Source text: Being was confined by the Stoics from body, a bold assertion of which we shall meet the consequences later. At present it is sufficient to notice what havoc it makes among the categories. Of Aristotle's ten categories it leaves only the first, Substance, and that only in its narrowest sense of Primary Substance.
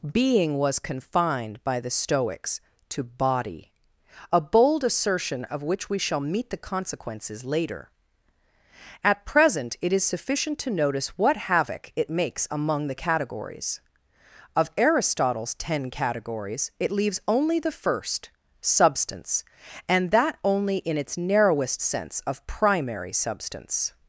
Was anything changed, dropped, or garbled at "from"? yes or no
yes